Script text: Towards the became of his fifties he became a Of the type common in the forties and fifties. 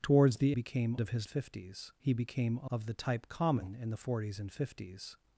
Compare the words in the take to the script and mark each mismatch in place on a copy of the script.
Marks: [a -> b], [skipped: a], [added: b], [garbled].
Towards the became of his fifties he became a Of the type common in the forties and fifties.